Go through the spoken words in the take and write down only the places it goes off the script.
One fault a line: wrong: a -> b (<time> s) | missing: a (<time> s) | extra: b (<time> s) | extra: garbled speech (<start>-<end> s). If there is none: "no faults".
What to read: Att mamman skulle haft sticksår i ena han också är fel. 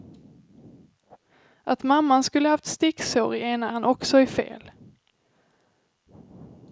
no faults